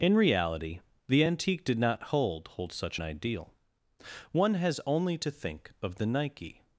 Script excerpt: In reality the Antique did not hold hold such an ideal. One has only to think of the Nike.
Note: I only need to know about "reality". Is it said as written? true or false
true